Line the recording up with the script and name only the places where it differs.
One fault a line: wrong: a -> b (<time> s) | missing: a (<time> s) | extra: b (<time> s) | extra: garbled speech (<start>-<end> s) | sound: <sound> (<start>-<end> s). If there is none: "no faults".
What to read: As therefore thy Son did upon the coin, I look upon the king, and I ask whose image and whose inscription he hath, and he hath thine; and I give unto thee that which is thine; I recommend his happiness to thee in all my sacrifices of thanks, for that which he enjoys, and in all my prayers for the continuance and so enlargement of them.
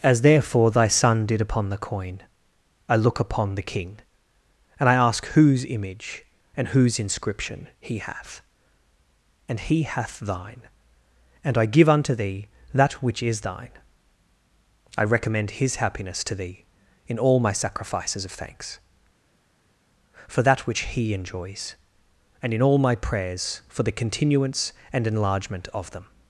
missing: so (25.1 s)